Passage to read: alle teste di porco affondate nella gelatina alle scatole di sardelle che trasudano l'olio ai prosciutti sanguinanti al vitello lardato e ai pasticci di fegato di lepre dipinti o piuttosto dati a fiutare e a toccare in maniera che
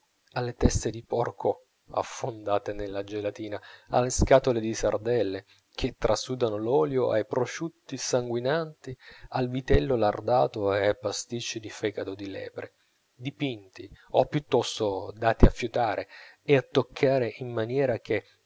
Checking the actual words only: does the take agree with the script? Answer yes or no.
yes